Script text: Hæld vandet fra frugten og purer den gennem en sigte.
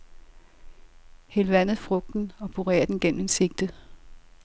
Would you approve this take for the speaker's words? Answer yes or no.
no